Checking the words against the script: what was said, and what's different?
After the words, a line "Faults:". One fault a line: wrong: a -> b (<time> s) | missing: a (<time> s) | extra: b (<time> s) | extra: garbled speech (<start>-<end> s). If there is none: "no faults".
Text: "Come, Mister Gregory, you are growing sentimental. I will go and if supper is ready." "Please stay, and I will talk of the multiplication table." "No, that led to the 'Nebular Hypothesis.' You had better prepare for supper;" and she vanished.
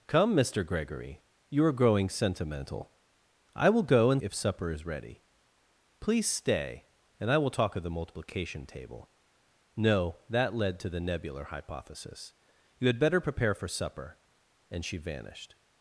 "Come, Mister Gregory, you are growing sentimental. I will go and if supper is ready." "Please stay, and I will talk of the multiplication table." "No, that led to the 'Nebular Hypothesis.' You had better prepare for supper;" and she vanished.
Faults:
no faults